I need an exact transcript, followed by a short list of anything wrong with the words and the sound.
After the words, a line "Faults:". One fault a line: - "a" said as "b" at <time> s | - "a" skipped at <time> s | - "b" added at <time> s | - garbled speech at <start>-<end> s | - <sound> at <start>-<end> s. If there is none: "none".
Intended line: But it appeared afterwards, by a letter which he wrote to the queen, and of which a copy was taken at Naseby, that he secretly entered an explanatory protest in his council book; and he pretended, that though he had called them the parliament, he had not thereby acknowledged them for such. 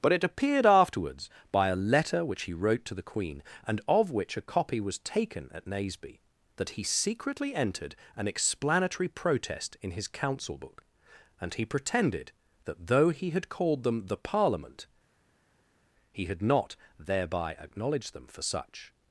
But it appeared afterwards, by a letter which he wrote to the queen, and of which a copy was taken at Naseby, that he secretly entered an explanatory protest in his council book; and he pretended, that though he had called them the parliament, he had not thereby acknowledged them for such.
Faults:
none